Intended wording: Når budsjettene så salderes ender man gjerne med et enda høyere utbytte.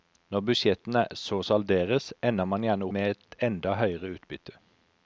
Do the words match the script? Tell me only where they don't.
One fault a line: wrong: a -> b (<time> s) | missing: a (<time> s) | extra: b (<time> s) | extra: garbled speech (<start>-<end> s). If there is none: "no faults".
no faults